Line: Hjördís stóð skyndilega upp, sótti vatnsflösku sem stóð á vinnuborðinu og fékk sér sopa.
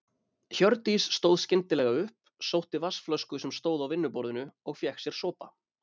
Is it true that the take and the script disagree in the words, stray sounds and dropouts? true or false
false